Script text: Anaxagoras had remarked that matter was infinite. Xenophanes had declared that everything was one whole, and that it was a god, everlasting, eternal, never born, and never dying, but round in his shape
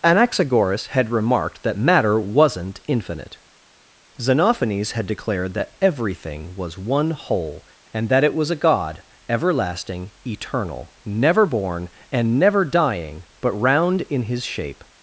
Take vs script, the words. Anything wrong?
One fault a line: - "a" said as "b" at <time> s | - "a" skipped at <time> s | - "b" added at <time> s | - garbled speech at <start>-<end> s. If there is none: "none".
- "was" said as "wasn't" at 2.2 s